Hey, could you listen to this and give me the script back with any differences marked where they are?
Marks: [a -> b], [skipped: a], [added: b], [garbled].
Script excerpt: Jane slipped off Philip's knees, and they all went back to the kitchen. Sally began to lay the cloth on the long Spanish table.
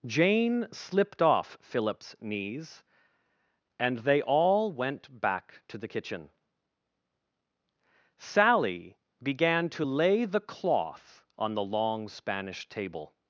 Jane slipped off Philip's knees, and they all went back to the kitchen. Sally began to lay the cloth on the long Spanish table.